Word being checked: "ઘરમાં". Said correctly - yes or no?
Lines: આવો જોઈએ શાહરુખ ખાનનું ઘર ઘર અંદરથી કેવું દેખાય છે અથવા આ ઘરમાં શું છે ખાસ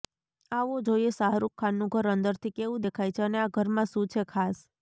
yes